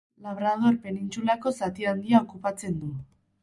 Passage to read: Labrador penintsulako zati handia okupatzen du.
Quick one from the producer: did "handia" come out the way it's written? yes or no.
yes